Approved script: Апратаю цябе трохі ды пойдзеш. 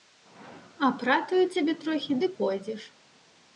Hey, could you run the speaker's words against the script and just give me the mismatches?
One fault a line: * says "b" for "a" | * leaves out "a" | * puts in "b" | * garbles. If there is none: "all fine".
all fine